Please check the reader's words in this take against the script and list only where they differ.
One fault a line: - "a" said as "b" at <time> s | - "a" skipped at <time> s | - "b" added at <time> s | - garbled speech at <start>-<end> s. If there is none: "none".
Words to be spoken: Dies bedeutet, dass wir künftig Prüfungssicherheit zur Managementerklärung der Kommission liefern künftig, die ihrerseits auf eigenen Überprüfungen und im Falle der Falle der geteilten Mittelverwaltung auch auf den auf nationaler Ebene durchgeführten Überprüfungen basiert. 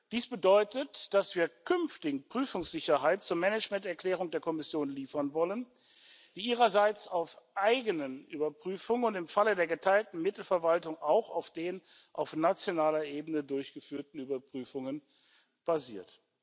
- "künftig" said as "wollen" at 5.3 s
- "Falle der" skipped at 9.7 s